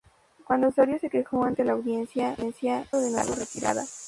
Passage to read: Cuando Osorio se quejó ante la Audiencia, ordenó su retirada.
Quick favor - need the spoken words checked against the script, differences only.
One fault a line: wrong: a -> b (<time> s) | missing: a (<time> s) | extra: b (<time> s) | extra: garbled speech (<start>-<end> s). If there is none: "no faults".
no faults